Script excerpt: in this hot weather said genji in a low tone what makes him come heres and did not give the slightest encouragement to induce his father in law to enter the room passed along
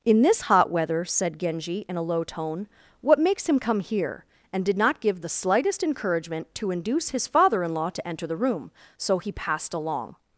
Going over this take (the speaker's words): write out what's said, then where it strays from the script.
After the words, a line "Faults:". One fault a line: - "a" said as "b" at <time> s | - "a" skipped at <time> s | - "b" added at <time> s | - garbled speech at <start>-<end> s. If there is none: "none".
in this hot weather said genji in a low tone what makes him come here and did not give the slightest encouragement to induce his father in law to enter the room so he passed along
Faults:
- "heres" said as "here" at 3.8 s
- "so he" added at 9.0 s